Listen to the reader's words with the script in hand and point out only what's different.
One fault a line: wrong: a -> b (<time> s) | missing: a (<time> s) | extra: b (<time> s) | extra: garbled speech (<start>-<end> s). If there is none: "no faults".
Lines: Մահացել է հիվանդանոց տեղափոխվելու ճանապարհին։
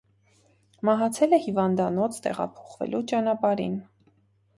no faults